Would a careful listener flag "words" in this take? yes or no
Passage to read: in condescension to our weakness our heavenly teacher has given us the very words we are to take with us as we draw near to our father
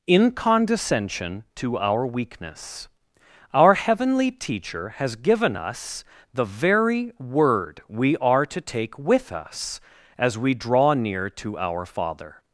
yes